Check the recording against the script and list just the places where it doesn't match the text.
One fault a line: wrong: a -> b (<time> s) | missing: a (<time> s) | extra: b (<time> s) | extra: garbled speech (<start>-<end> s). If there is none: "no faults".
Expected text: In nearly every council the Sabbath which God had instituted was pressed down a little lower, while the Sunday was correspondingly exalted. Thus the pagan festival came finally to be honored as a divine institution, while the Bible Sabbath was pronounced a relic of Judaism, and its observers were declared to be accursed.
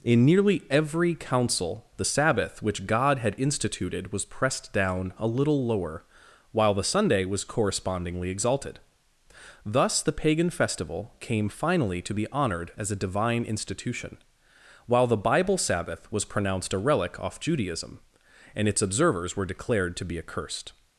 wrong: of -> off (17.2 s)